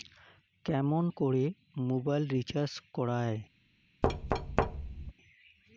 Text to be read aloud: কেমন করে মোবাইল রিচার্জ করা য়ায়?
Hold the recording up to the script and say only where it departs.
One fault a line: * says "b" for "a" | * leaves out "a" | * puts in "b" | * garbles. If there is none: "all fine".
all fine